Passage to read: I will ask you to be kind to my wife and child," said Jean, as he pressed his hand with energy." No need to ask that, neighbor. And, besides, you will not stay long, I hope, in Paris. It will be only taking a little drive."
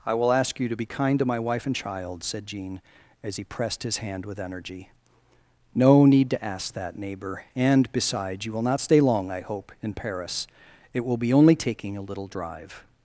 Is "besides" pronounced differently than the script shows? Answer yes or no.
no